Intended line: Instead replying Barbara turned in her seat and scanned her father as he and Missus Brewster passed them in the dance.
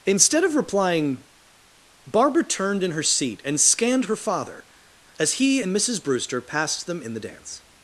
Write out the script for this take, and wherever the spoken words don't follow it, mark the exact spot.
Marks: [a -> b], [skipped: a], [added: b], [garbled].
Instead [added: of] replying Barbara turned in her seat and scanned her father as he and Missus Brewster passed them in the dance.